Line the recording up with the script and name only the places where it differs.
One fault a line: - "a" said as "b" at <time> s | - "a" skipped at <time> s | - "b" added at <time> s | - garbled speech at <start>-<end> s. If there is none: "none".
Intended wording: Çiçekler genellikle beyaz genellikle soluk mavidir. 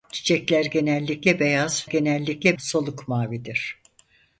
none